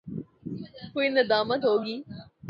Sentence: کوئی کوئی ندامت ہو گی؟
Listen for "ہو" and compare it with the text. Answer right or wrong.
right